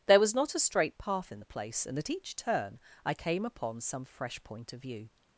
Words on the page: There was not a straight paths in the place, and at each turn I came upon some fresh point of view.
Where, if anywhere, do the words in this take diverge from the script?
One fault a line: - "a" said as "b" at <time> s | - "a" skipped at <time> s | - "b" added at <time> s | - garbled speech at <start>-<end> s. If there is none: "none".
- "paths" said as "path" at 1.0 s